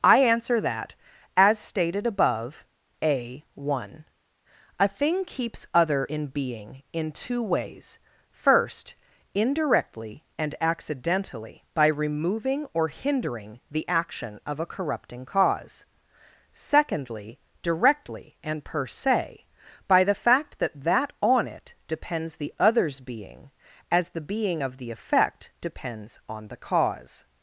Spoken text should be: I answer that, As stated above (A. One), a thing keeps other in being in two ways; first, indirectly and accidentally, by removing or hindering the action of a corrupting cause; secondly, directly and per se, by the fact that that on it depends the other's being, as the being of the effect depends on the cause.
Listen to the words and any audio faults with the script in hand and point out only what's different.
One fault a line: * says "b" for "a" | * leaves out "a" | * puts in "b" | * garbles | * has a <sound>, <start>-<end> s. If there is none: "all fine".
all fine